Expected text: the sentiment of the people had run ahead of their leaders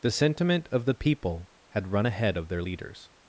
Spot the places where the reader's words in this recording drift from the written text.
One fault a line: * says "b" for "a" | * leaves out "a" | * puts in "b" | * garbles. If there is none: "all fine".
all fine